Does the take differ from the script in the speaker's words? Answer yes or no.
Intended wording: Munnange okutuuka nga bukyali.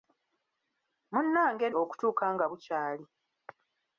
no